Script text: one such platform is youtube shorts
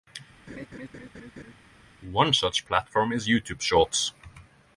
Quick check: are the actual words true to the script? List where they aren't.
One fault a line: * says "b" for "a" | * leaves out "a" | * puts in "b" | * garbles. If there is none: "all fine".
all fine